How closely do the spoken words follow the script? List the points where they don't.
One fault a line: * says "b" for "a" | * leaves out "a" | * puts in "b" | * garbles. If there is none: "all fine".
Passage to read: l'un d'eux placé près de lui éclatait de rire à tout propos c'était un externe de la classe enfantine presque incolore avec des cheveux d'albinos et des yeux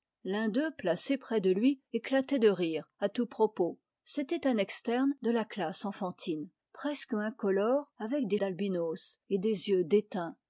* leaves out "cheveux"